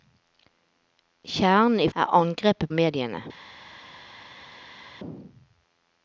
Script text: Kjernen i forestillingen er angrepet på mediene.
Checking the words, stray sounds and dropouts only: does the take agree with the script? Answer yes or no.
no